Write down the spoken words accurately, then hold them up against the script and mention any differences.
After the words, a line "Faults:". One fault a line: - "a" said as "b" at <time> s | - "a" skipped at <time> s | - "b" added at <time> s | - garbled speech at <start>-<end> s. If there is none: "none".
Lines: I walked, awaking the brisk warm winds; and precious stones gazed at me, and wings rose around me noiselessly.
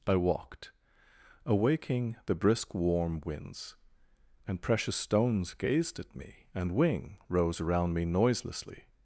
I walked, awaking the brisk warm winds; and precious stones gazed at me, and wing rose around me noiselessly.
Faults:
- "wings" said as "wing" at 6.8 s